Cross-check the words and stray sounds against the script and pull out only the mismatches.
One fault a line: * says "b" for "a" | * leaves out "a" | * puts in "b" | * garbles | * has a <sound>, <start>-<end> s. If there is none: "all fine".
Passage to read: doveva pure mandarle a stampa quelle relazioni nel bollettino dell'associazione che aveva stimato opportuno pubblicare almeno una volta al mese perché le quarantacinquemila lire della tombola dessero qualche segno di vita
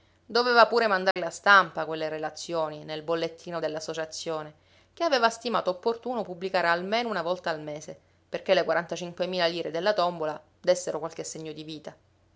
* has a dropout, 1.1-1.2 s